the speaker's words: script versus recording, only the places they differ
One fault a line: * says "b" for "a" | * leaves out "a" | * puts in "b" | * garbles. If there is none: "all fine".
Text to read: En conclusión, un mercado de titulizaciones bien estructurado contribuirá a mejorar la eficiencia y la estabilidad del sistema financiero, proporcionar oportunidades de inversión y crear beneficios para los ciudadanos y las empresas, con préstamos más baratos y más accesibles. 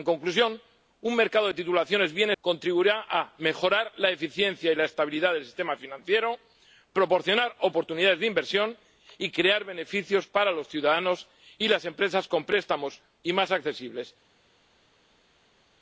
* leaves out "estructurado"
* leaves out "más baratos"